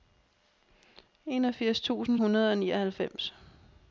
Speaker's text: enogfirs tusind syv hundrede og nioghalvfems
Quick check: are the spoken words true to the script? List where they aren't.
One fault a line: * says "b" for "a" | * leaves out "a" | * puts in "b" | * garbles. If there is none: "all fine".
* leaves out "syv"